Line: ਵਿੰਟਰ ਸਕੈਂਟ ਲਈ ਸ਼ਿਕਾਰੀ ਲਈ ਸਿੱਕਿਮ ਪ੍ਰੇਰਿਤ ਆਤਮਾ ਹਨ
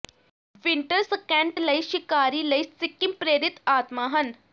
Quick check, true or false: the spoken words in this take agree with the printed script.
true